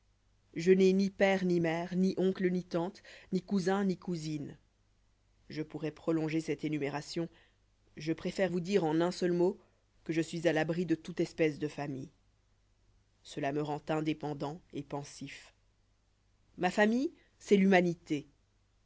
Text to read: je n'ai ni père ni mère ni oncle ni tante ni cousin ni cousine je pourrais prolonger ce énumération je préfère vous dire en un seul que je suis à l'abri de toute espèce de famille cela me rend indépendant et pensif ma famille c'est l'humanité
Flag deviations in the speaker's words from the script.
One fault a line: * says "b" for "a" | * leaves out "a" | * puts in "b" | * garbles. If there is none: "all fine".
* says "cette" for "ce"
* puts in "mot"